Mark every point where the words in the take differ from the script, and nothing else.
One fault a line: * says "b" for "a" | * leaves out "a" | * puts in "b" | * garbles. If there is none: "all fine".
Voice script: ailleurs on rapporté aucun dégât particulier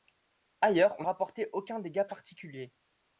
all fine